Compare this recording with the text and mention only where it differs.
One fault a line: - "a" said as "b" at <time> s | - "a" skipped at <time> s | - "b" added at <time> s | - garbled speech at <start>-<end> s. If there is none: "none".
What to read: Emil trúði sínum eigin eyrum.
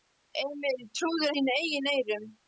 none